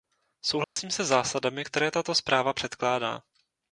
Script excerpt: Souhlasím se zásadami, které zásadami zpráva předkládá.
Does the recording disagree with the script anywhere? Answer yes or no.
yes